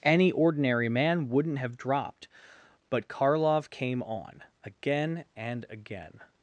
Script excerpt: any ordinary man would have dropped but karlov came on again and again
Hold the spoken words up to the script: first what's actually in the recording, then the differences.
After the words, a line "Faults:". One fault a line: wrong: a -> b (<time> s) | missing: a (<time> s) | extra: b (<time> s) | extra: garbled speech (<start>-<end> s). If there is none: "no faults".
any ordinary man wouldn't have dropped but karlov came on again and again
Faults:
wrong: would -> wouldn't (1.3 s)